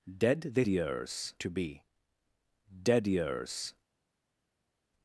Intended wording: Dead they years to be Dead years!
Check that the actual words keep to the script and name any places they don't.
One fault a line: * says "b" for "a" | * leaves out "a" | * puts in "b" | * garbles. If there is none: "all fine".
all fine